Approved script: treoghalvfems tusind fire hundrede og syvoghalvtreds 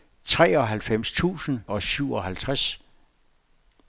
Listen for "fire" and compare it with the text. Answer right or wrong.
wrong